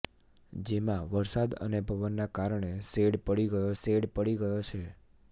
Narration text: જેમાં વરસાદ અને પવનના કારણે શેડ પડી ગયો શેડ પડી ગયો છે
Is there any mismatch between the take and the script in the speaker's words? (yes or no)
no